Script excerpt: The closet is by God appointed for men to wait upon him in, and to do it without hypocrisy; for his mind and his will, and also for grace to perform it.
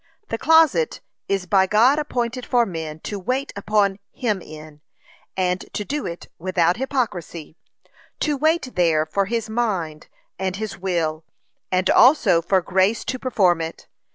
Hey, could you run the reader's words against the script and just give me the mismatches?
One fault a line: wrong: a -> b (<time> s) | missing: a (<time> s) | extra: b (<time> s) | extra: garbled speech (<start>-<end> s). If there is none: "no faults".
extra: to wait there (8.2 s)